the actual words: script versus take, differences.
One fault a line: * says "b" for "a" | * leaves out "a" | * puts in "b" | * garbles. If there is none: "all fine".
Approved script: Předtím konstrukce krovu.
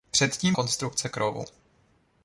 all fine